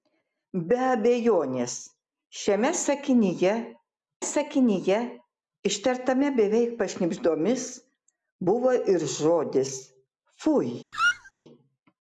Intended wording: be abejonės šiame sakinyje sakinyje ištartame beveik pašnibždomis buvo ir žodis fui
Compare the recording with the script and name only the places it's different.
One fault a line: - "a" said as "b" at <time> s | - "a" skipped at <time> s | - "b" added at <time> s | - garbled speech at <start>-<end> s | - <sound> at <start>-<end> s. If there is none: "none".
- squeak at 10.9-11.3 s